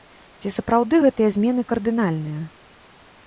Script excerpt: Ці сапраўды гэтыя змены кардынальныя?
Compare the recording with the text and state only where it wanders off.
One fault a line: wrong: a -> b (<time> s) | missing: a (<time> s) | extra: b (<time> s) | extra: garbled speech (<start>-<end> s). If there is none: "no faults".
no faults